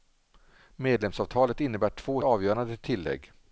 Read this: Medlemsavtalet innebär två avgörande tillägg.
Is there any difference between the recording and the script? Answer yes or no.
no